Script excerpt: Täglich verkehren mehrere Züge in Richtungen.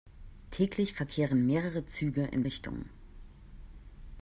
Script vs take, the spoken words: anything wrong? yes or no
no